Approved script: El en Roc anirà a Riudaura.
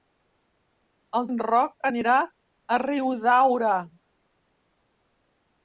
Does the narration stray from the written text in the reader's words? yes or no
no